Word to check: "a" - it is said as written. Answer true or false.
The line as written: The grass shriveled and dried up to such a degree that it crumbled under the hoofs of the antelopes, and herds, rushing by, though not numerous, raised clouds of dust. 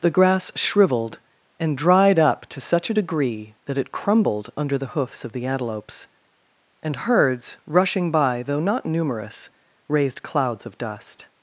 true